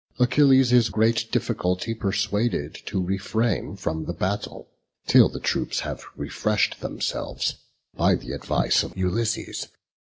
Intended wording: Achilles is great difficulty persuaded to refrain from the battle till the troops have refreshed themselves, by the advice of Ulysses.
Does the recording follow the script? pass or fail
pass